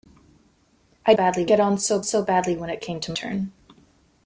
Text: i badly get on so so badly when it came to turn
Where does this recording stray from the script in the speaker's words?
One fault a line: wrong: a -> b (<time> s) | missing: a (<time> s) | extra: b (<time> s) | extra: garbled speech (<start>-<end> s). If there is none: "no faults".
no faults